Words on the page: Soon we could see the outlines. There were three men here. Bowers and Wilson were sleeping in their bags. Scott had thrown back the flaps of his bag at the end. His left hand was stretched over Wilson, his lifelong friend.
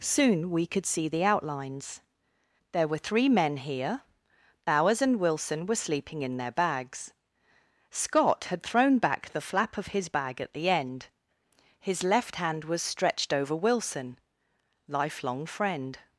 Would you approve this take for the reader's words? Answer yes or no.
no